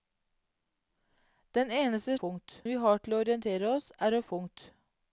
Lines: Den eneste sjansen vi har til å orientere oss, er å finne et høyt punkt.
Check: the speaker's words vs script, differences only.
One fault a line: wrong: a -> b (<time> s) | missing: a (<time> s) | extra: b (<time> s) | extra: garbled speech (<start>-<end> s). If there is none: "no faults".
wrong: sjansen -> punkt (2.2 s)
missing: finne et høyt (4.2 s)